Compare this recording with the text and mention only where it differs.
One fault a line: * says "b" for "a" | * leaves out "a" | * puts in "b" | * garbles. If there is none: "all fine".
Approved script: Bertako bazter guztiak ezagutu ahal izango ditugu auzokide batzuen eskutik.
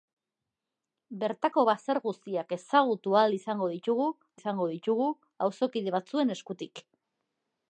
* puts in "izango ditugu"